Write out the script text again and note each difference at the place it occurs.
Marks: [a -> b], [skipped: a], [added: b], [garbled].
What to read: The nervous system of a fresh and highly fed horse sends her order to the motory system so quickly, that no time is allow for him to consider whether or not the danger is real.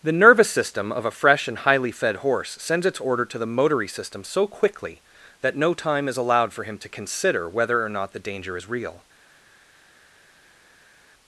The nervous system of a fresh and highly fed horse sends [her -> its] order to the motory system so quickly, that no time is [allow -> allowed] for him to consider whether or not the danger is real.